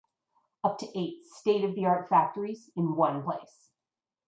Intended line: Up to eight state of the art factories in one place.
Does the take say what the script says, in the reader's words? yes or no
yes